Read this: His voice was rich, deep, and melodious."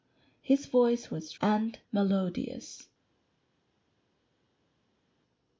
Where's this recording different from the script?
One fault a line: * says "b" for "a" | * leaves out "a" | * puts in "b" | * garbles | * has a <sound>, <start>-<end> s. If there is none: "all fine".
* leaves out "rich deep"